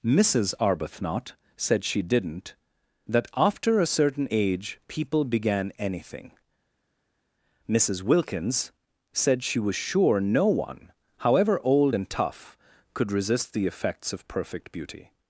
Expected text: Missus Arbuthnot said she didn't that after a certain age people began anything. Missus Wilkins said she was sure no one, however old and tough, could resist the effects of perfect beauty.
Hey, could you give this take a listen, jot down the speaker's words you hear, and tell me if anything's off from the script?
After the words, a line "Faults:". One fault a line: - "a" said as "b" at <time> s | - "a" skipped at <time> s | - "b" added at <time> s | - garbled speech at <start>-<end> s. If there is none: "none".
Missus Arbuthnot said she didn't that after a certain age people began anything. Missus Wilkins said she was sure no one, however old and tough, could resist the effects of perfect beauty.
Faults:
none